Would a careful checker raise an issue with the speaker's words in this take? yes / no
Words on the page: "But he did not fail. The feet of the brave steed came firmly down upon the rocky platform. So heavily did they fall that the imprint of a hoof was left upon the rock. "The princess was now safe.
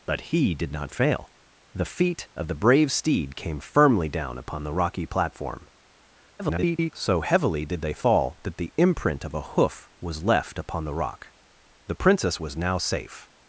yes